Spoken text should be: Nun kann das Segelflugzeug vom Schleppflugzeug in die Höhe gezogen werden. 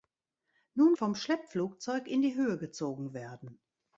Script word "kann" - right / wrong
wrong